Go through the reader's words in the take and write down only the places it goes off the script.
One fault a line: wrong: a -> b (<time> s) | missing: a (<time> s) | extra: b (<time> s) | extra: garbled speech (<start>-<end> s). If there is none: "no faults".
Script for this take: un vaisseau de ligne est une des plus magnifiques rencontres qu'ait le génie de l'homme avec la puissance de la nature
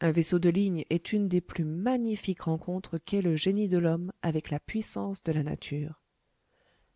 no faults